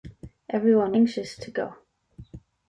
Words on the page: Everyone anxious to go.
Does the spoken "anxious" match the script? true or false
true